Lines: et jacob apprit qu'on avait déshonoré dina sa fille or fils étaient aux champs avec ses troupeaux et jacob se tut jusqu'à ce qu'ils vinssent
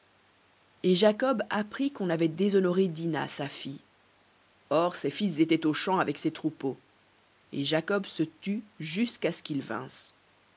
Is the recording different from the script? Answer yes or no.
yes